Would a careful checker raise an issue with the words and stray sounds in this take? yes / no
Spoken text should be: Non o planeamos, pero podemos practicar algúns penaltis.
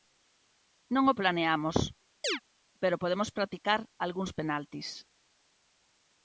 yes